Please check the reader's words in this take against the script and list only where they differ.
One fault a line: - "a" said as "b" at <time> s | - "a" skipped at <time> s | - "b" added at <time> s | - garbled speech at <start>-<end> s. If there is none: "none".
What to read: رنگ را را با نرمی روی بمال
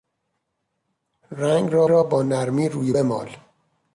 none